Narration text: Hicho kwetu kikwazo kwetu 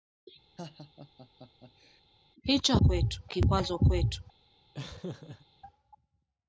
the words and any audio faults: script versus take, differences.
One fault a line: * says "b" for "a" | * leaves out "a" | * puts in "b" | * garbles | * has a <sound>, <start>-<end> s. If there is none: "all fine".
* has a laugh, 0.6-2.0 s
* has a laugh, 4.7-5.5 s